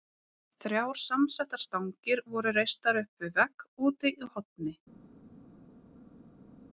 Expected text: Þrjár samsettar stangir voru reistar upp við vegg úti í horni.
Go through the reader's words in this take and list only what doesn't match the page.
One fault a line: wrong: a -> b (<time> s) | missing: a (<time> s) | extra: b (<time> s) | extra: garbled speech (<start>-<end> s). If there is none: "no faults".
no faults